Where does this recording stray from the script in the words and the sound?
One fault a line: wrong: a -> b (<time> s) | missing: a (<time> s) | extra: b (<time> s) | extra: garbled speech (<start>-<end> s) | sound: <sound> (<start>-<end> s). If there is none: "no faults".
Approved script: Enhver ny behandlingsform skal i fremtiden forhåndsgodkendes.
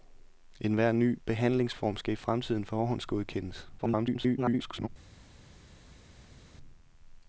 extra: garbled speech (3.8-4.9 s)